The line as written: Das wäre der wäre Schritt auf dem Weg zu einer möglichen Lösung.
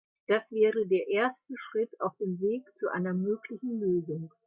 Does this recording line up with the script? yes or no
no